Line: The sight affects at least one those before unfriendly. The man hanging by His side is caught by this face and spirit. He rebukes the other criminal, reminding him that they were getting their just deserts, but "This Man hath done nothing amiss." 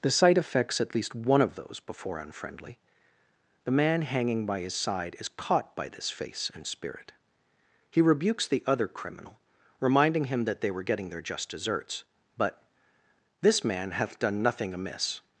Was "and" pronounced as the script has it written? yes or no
yes